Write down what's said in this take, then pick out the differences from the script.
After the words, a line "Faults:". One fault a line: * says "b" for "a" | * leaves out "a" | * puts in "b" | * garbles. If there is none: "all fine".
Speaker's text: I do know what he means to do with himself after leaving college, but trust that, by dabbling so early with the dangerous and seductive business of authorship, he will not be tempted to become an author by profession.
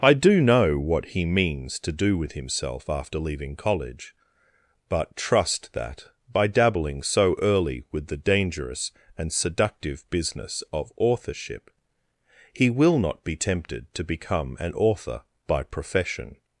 I do know what he means to do with himself after leaving college, but trust that, by dabbling so early with the dangerous and seductive business of authorship, he will not be tempted to become an author by profession.
Faults:
all fine